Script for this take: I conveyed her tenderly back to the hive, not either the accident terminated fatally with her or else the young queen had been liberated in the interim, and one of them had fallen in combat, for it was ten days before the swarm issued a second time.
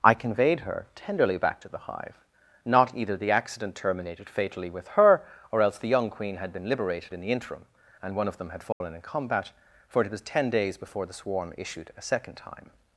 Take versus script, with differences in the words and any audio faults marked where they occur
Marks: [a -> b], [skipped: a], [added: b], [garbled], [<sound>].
I conveyed her tenderly back to the hive, not either the accident terminated fatally with her or else the young queen had been liberated in the interim, and one of them had fallen [dropout] in combat, for it was ten days before the swarm issued a second time.